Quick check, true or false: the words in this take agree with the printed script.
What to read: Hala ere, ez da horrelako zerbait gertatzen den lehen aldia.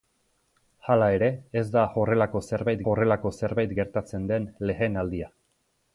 false